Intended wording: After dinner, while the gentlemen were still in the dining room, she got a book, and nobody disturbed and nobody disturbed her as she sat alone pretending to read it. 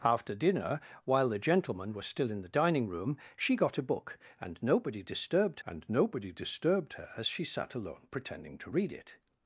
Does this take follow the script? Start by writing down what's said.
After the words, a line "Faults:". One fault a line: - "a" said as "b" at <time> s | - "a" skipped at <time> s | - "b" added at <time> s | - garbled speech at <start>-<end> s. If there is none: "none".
After dinner, while the gentlemen were still in the dining room, she got a book, and nobody disturbed and nobody disturbed her as she sat alone pretending to read it.
Faults:
none